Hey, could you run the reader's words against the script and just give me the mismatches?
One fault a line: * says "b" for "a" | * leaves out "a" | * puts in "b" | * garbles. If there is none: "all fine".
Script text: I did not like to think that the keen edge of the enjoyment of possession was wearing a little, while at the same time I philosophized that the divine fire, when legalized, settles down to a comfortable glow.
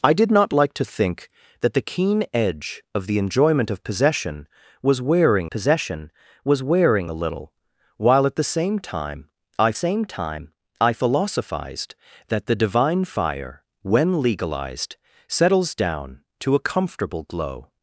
* puts in "possession was wearing"
* puts in "same time I"